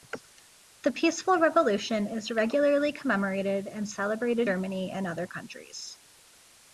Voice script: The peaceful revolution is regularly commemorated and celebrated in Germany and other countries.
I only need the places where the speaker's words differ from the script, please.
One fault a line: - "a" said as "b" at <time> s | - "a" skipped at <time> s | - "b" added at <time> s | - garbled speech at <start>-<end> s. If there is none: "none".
- "in" skipped at 4.5 s